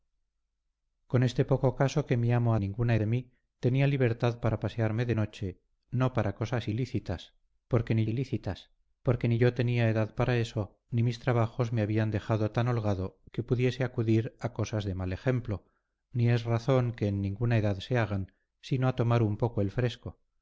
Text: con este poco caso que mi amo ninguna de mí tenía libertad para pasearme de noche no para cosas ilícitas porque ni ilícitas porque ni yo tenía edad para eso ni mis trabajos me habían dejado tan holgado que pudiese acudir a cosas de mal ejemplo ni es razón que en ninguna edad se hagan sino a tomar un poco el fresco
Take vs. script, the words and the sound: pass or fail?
pass